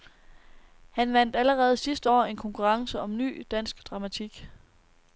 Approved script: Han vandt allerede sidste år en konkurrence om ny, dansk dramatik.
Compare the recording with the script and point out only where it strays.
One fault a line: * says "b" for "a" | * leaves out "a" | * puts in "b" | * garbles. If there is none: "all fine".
all fine